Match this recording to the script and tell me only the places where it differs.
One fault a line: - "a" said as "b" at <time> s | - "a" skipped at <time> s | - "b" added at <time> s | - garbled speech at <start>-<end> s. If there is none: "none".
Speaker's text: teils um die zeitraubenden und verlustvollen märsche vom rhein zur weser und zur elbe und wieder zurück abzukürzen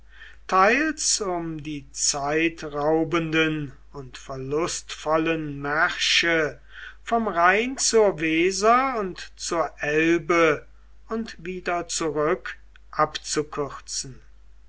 none